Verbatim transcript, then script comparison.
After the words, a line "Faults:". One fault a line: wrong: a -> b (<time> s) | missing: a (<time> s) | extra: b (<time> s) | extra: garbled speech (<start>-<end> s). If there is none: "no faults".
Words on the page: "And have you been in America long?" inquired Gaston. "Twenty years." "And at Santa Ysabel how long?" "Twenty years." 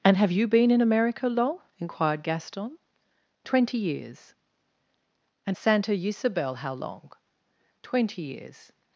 "And have you been in America long?" inquired Gaston. "Twenty years." "And Santa Ysabel how long?" "Twenty years."
Faults:
missing: at (5.6 s)